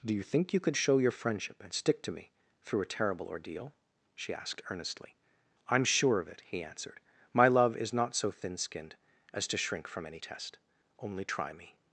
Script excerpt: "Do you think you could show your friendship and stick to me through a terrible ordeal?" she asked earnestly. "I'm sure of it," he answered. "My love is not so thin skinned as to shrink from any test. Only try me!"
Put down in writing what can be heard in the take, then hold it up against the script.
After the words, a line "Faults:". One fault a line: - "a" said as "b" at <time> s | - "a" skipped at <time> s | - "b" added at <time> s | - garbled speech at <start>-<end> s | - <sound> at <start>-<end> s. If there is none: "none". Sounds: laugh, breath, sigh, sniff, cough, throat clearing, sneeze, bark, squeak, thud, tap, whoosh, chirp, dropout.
"Do you think you could show your friendship and stick to me through a terrible ordeal?" she asked earnestly. "I'm sure of it," he answered. "My love is not so thin skinned as to shrink from any test. Only try me!"
Faults:
none